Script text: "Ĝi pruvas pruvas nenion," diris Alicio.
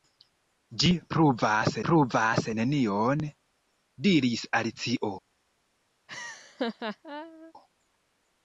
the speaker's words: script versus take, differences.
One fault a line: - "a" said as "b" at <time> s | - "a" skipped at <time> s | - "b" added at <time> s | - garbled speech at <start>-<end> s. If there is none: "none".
none